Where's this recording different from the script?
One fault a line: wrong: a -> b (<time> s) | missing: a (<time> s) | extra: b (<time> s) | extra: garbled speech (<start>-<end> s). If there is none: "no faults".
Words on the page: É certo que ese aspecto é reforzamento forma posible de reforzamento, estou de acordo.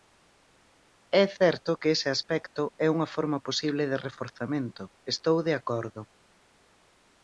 wrong: reforzamento -> unha (3.0 s)